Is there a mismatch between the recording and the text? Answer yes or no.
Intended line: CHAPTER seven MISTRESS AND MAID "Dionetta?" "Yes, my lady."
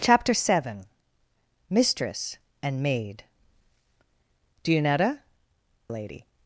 yes